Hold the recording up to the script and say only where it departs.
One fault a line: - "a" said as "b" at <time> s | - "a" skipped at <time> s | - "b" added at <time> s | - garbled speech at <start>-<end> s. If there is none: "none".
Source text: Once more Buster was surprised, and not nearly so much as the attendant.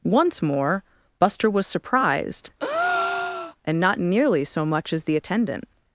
none